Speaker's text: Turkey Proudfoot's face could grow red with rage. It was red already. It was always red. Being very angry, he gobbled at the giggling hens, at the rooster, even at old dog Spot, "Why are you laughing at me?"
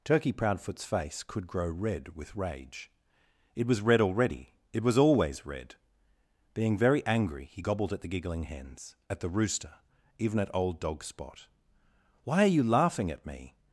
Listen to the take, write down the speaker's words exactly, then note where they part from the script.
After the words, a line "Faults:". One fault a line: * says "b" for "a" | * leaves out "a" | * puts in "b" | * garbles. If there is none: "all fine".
Turkey Proudfoot's face could grow red with rage. It was red already. It was always red. Being very angry, he gobbled at the giggling hens, at the rooster, even at old dog Spot, "Why are you laughing at me?"
Faults:
all fine